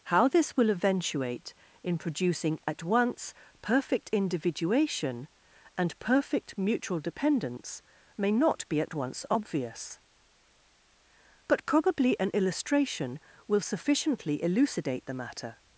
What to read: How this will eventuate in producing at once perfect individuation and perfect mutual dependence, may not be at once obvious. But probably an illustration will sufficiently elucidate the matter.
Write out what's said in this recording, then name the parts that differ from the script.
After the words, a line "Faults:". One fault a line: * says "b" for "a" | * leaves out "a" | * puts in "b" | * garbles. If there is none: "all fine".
How this will eventuate in producing at once perfect individuation and perfect mutual dependence, may not be at once obvious. But probably an illustration will sufficiently elucidate the matter.
Faults:
all fine